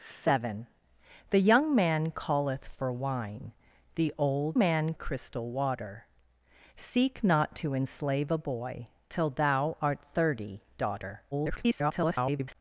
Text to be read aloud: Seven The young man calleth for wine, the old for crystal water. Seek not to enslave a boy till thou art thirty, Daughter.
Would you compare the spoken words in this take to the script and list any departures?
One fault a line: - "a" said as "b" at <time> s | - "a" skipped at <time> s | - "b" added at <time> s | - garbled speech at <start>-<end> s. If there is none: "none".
- "for" said as "man" at 4.6 s
- garbled speech at 11.3-12.6 s